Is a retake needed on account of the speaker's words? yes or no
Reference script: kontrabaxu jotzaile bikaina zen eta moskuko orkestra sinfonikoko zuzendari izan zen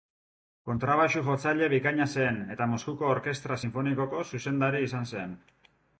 no